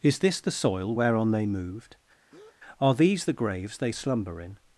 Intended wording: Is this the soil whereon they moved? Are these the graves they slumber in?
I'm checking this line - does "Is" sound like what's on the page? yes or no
yes